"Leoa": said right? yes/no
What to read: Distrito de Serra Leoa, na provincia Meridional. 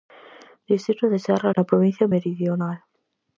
no